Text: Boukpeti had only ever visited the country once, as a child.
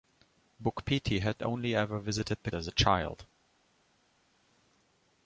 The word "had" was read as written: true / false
true